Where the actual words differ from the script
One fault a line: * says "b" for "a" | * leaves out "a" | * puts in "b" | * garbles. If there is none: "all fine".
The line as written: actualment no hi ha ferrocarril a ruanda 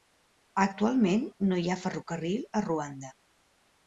all fine